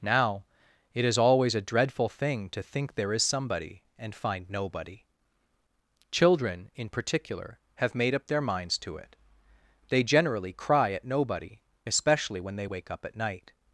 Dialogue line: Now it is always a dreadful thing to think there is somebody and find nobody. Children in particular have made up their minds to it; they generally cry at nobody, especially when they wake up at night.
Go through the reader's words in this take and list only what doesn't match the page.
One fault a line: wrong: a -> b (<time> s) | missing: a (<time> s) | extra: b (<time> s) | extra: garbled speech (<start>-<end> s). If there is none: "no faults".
no faults